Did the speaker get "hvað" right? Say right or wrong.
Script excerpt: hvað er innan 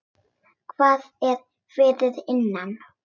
right